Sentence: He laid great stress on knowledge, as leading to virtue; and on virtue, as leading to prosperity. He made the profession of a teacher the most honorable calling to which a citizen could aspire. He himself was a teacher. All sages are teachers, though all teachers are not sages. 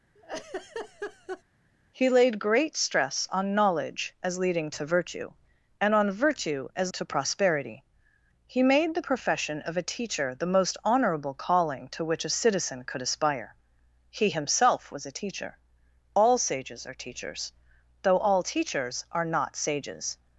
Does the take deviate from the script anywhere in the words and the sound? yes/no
yes